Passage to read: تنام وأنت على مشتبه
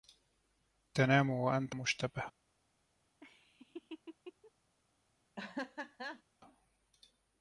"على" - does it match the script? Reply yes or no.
no